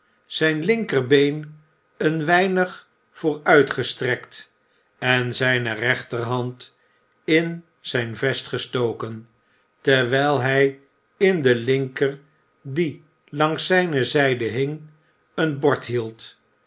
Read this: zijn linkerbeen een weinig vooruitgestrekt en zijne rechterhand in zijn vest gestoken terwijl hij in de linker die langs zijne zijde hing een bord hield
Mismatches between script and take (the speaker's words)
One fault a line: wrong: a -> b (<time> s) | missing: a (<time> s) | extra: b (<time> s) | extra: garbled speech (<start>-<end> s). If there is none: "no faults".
no faults